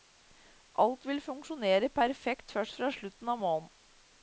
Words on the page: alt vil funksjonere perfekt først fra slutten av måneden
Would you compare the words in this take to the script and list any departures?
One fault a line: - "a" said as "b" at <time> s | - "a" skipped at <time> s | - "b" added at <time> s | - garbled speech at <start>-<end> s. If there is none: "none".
none